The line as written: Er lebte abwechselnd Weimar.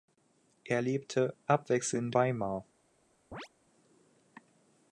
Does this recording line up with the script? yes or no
yes